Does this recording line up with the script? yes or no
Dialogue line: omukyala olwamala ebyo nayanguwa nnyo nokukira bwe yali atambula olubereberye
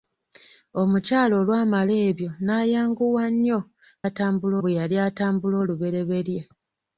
no